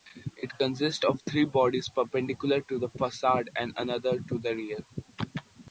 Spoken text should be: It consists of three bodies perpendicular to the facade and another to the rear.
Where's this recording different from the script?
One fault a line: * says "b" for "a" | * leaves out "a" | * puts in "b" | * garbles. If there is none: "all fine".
all fine